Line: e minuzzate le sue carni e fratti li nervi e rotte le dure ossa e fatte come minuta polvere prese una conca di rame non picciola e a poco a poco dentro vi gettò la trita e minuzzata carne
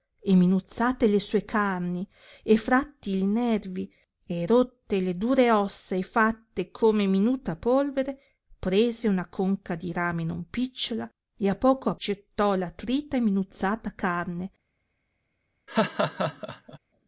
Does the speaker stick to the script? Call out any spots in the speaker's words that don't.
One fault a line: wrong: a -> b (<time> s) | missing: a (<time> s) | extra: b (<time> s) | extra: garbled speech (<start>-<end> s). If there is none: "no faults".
missing: poco dentro vi (11.9 s)